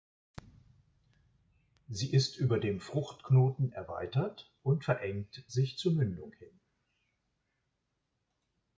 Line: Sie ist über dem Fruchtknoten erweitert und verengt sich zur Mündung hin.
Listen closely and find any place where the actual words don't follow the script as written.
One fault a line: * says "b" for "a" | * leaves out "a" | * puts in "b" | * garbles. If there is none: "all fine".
all fine